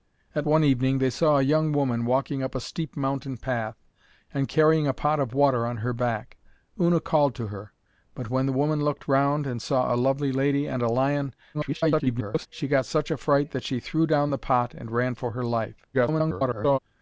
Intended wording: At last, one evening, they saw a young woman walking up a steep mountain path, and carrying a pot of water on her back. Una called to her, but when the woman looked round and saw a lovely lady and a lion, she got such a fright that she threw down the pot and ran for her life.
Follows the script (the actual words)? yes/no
no